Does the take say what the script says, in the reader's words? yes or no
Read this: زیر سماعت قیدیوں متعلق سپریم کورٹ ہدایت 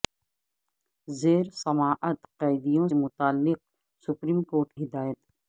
yes